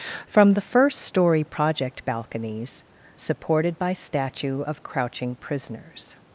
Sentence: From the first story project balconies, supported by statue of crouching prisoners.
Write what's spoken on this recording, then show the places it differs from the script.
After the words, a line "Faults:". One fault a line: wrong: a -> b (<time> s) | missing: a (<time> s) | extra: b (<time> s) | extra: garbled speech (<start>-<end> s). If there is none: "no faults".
From the first story project balconies, supported by statue of crouching prisoners.
Faults:
no faults